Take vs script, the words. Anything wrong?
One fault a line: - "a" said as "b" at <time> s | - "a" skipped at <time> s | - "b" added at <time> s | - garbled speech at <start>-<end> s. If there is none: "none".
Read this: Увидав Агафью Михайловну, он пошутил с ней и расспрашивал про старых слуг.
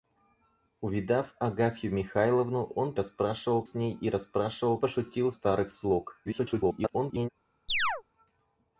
- "пошутил" said as "расспрашивал" at 2.9 s
- "про" said as "пошутил" at 4.8 s
- garbled speech at 6.2-7.3 s